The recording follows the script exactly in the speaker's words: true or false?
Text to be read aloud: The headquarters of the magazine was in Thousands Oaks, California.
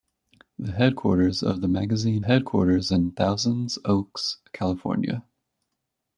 false